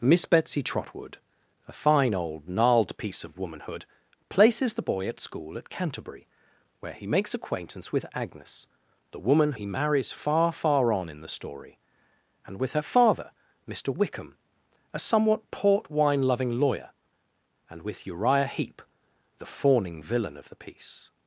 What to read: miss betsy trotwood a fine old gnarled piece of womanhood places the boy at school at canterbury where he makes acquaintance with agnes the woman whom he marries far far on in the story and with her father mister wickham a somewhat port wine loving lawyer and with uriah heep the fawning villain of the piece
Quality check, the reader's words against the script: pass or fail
fail